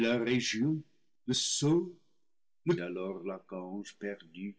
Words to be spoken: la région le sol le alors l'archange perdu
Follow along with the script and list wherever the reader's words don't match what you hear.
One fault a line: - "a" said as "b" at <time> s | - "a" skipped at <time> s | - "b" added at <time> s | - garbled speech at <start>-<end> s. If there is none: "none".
none